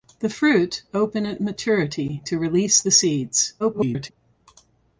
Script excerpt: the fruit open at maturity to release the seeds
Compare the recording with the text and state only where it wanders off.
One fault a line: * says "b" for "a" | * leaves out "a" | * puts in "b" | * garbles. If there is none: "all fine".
* garbles